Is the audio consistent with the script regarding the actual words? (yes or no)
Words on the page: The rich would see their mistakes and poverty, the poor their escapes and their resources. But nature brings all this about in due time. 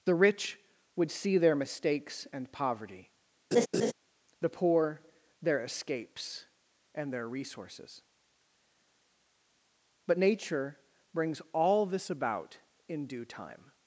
yes